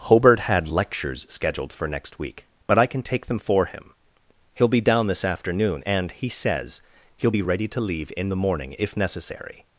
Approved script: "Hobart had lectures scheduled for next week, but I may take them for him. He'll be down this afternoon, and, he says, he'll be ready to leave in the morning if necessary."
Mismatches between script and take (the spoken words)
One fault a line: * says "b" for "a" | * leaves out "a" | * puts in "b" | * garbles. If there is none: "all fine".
* says "can" for "may"